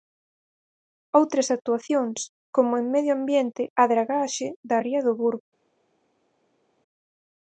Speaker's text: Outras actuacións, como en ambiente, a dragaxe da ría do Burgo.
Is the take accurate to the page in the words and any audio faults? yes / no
no